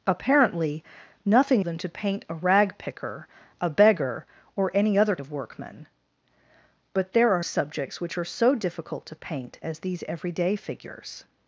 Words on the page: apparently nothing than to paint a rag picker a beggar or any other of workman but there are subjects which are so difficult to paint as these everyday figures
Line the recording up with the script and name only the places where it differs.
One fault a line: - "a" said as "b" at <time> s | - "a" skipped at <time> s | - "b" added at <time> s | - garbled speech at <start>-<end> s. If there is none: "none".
none